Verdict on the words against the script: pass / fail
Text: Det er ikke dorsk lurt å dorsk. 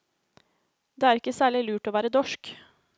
fail